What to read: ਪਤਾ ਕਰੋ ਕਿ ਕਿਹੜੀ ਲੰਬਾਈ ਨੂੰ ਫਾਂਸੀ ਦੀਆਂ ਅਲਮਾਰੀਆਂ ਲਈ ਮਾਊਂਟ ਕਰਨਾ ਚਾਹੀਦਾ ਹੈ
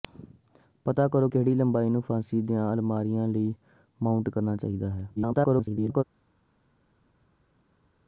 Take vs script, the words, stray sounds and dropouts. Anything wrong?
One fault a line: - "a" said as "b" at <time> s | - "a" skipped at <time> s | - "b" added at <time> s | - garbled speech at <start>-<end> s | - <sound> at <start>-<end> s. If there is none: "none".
- "ਕਿ" skipped at 1.3 s
- garbled speech at 5.2-6.0 s